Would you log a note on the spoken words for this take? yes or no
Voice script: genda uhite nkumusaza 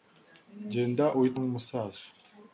no